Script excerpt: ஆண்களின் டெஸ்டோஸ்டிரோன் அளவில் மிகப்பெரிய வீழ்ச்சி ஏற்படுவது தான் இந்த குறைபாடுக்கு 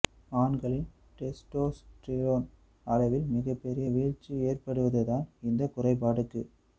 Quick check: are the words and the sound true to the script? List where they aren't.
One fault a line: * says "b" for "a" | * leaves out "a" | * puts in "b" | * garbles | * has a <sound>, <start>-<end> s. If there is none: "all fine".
all fine